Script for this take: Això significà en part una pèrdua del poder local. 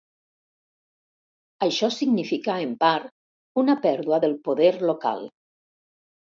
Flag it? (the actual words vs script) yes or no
no